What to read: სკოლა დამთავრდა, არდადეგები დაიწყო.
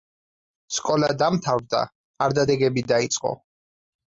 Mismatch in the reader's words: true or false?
false